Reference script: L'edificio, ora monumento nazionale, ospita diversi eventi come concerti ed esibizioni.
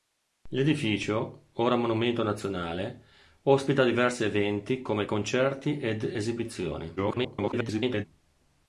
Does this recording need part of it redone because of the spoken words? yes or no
yes